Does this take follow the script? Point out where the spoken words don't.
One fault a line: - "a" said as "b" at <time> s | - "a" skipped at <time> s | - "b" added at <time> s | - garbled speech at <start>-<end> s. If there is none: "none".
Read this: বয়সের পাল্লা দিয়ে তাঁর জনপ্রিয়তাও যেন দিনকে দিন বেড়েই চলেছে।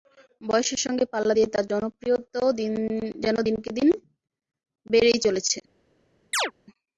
- "সঙ্গে" added at 0.8 s